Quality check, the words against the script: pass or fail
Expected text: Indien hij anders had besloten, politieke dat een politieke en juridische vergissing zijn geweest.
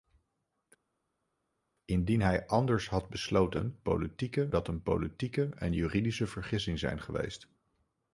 pass